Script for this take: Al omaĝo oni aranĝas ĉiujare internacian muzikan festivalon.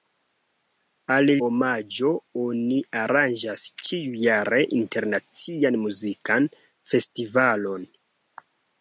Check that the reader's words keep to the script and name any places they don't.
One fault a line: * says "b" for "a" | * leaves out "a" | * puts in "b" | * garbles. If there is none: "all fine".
all fine